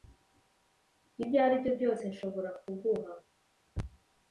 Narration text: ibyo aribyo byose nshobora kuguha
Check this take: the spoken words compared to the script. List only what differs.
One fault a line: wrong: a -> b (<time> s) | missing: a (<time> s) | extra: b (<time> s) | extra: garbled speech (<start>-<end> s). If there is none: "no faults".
no faults